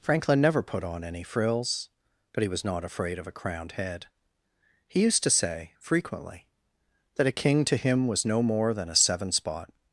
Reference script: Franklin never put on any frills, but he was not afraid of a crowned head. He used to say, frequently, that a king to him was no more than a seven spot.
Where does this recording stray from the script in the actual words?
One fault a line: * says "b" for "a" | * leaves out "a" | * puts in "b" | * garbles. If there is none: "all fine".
all fine